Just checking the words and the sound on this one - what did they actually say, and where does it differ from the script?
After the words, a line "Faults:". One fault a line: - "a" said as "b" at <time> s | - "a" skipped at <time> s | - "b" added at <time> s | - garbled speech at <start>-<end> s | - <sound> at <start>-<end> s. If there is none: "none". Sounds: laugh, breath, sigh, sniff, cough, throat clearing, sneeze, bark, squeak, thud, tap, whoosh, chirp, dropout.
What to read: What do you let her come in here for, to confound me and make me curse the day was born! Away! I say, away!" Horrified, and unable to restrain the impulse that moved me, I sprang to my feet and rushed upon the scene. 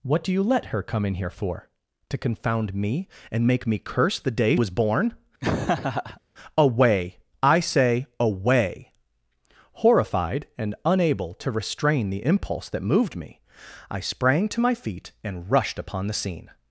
What do you let her come in here for, to confound me and make me curse the day was born! Away! I say, away!" Horrified, and unable to restrain the impulse that moved me, I sprang to my feet and rushed upon the scene.
Faults:
- laugh at 5.4-6.2 s